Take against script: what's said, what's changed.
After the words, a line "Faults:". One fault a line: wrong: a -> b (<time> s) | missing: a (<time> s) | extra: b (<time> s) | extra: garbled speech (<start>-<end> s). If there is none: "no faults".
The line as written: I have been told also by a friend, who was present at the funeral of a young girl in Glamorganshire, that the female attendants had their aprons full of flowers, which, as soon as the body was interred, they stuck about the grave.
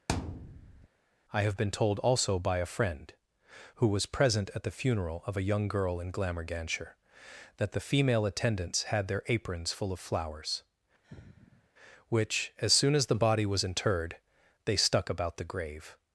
I have been told also by a friend, who was present at the funeral of a young girl in Glamorganshire, that the female attendants had their aprons full of flowers, which, as soon as the body was interred, they stuck about the grave.
Faults:
no faults